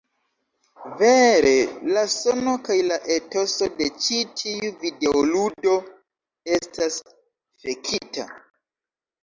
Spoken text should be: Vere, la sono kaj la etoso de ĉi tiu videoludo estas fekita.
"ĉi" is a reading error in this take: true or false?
false